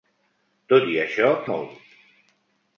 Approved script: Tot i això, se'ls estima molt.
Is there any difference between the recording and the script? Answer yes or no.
yes